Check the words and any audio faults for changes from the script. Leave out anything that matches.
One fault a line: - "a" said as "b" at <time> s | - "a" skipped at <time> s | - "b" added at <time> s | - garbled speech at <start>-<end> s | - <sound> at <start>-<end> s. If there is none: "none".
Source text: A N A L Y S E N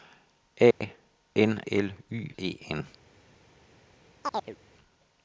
- dropout at 0.7-0.8 s
- "A" skipped at 1.6 s
- "S" skipped at 2.3 s
- chirp at 4.2-4.6 s